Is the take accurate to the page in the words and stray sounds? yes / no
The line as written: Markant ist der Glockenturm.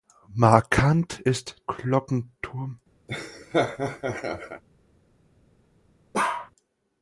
no